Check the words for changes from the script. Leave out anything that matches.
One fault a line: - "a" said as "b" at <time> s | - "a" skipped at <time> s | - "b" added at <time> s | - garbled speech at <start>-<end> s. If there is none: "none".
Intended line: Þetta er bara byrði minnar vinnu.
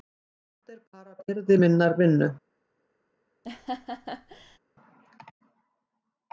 none